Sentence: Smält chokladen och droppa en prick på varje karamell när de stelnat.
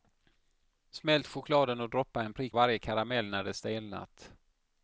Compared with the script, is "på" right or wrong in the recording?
wrong